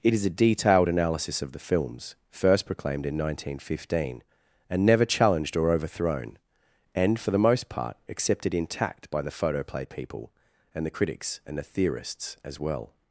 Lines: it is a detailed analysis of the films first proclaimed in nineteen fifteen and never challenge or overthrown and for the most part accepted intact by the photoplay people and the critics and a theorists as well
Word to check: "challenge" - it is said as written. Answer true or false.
false